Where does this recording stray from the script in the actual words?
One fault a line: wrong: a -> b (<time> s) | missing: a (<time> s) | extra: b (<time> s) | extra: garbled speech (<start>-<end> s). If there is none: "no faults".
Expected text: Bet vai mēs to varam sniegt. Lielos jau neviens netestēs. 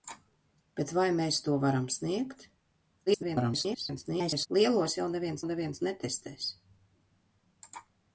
extra: garbled speech (3.1-4.5 s)
extra: neviens (5.4 s)